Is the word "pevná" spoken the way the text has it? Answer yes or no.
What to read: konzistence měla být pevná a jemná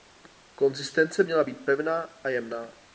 yes